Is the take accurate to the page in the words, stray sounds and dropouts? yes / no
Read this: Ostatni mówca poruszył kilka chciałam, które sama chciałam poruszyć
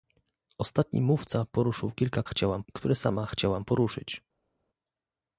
yes